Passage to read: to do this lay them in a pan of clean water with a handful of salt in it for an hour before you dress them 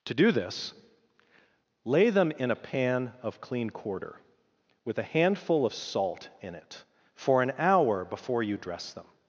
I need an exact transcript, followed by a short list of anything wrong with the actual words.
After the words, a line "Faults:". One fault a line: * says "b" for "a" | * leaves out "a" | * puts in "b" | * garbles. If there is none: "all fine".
to do this lay them in a pan of clean quarter with a handful of salt in it for an hour before you dress them
Faults:
* says "quarter" for "water"